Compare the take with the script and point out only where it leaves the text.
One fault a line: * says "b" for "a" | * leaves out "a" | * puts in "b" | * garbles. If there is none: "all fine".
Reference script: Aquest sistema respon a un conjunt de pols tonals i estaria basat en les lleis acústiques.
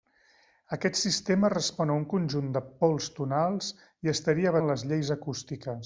* leaves out "basat"